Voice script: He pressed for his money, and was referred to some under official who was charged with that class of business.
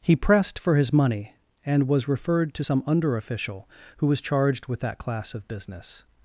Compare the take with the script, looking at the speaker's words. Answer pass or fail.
pass